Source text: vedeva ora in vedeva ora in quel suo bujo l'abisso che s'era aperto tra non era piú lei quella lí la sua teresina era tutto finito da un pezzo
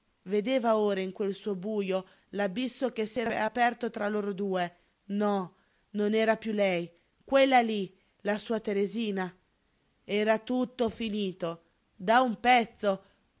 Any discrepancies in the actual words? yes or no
yes